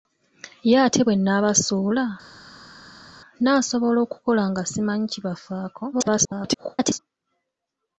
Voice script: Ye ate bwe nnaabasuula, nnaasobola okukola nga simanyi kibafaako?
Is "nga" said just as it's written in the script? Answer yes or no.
yes